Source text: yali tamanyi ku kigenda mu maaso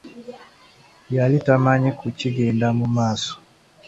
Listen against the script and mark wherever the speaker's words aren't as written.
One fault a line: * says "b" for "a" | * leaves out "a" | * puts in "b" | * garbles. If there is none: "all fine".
all fine